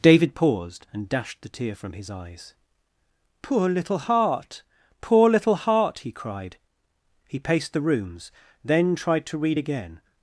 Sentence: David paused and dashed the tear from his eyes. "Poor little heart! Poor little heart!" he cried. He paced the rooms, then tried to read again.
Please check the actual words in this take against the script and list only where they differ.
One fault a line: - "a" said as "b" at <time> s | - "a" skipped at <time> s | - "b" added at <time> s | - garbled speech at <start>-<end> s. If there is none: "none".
none